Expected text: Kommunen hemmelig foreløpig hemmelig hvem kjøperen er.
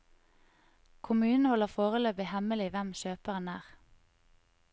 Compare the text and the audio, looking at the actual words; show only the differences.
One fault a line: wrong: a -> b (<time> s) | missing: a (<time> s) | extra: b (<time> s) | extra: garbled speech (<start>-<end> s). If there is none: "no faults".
wrong: hemmelig -> holder (1.5 s)